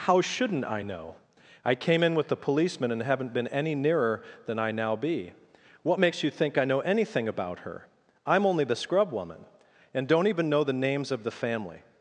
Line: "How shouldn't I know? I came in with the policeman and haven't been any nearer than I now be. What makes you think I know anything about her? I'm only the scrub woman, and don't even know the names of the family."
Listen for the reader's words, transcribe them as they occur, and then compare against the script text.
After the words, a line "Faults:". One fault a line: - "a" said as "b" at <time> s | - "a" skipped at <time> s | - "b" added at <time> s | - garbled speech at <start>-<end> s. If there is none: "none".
"How shouldn't I know? I came in with the policeman and haven't been any nearer than I now be. What makes you think I know anything about her? I'm only the scrub woman, and don't even know the names of the family."
Faults:
none